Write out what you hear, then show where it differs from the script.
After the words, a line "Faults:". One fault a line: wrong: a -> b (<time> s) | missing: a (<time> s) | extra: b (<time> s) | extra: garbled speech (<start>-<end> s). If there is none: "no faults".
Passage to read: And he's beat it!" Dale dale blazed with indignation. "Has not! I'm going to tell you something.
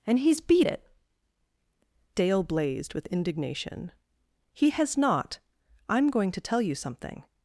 And he's beat it!" Dale blazed with indignation. "He has not! I'm going to tell you something.
Faults:
missing: dale (2.4 s)
extra: He (4.5 s)